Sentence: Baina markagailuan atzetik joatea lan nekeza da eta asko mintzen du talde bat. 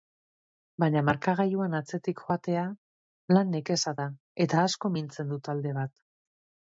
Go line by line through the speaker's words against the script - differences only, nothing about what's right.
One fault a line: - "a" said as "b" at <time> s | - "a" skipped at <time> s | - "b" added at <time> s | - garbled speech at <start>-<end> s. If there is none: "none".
none